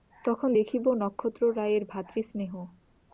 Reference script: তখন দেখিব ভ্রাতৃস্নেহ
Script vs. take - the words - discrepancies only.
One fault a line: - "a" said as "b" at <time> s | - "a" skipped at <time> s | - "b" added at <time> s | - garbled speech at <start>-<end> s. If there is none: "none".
- "নক্ষত্ররায়ের" added at 0.9 s